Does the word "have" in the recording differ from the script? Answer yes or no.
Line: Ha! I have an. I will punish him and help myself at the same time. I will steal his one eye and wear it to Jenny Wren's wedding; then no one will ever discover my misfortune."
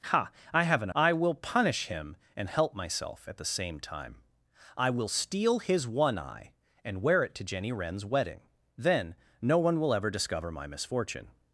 no